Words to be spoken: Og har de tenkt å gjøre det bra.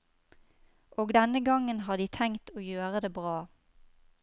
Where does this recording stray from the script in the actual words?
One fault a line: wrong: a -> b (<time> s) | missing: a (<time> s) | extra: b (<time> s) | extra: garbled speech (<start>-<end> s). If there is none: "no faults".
extra: denne gangen (1.1 s)